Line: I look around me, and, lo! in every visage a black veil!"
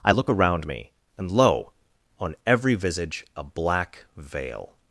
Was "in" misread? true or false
true